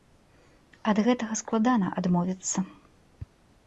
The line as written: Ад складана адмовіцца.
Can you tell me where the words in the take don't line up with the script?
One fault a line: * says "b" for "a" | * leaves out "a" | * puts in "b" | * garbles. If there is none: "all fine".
* puts in "гэтага"